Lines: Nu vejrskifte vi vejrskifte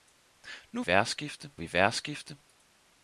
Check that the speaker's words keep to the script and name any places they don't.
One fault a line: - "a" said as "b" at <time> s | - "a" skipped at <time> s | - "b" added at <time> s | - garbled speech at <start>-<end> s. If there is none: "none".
none